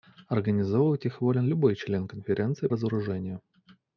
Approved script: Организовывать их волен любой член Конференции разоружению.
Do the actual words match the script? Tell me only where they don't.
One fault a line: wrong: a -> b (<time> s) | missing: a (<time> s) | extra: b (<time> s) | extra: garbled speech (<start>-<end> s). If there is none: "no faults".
no faults